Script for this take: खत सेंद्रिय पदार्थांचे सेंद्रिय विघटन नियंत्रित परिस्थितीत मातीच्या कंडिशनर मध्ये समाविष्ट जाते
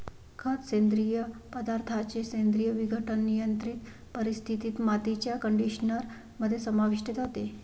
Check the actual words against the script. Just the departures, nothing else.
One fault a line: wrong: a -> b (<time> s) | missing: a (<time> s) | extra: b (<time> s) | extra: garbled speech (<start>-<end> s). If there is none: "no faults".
no faults